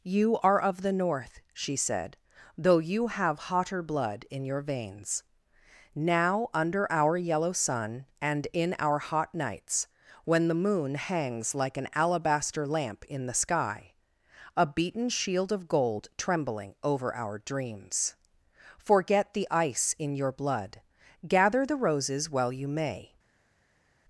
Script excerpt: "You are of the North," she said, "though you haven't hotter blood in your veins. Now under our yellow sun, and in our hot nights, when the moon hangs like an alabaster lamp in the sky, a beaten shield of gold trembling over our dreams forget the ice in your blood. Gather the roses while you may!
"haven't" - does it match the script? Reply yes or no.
no